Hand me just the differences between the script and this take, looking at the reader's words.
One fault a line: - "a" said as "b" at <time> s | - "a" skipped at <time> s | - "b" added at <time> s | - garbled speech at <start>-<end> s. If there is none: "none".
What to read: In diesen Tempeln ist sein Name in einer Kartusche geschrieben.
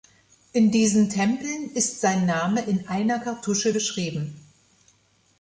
none